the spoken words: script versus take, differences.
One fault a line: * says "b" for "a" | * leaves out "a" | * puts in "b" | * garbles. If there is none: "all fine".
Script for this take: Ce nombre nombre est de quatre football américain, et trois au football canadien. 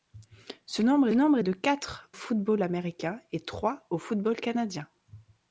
all fine